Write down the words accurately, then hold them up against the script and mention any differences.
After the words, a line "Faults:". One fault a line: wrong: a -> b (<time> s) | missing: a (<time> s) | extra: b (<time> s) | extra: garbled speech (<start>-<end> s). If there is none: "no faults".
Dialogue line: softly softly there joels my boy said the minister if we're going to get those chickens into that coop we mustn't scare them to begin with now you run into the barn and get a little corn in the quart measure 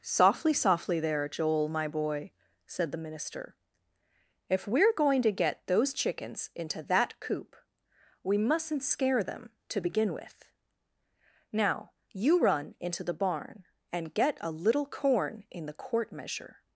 softly softly there joel my boy said the minister if we're going to get those chickens into that coop we mustn't scare them to begin with now you run into the barn and get a little corn in the quart measure
Faults:
wrong: joels -> joel (1.3 s)